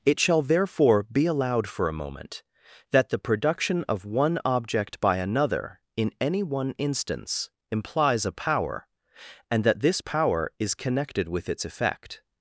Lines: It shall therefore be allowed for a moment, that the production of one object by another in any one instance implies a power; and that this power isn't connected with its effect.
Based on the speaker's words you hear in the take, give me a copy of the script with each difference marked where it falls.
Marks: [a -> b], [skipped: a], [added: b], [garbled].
It shall therefore be allowed for a moment, that the production of one object by another in any one instance implies a power; and that this power [isn't -> is] connected with its effect.